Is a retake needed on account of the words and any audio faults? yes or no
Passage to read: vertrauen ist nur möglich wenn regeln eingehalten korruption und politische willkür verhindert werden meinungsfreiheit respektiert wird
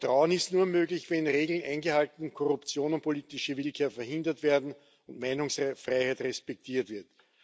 yes